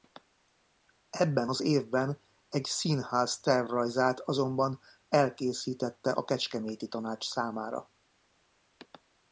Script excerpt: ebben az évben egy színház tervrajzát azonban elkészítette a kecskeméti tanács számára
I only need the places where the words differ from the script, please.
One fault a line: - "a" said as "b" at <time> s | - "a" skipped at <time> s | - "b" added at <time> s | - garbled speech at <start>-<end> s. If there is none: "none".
none